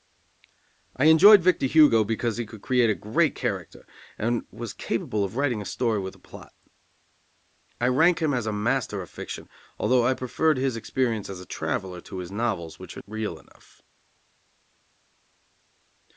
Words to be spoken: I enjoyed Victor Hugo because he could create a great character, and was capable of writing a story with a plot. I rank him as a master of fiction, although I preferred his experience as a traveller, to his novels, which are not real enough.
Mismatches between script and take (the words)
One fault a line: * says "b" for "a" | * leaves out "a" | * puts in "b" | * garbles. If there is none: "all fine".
* leaves out "not"